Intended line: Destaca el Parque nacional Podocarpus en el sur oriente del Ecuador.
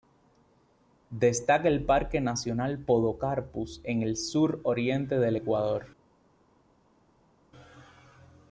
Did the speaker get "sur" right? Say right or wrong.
right